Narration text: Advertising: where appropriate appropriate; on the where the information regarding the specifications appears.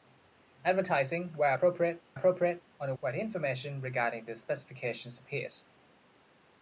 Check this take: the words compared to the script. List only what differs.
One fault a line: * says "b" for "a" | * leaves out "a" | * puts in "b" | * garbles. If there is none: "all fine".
all fine